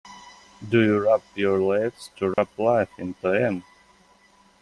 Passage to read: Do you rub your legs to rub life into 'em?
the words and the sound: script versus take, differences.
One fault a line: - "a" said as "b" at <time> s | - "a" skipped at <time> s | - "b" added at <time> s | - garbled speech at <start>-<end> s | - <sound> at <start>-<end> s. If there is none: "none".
- dropout at 2.3-2.4 s